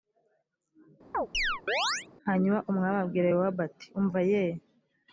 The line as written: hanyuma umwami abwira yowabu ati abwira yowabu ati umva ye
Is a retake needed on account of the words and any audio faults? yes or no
yes